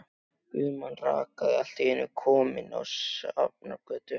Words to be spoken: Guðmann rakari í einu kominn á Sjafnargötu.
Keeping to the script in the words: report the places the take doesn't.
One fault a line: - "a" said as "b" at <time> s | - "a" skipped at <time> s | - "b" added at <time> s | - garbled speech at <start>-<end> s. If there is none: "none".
- "allt" added at 1.6 s